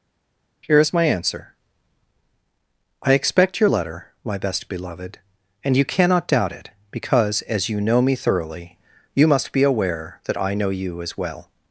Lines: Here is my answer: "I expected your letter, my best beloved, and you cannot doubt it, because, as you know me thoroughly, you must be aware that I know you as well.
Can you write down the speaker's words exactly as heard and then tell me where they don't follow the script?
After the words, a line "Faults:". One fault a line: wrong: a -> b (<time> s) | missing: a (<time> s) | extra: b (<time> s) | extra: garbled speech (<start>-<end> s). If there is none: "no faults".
Here is my answer: "I expect your letter, my best beloved, and you cannot doubt it, because, as you know me thoroughly, you must be aware that I know you as well.
Faults:
wrong: expected -> expect (3.1 s)